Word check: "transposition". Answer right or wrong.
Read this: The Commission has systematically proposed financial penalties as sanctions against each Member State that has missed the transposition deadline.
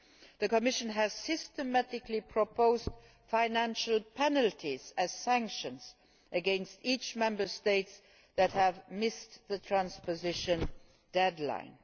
right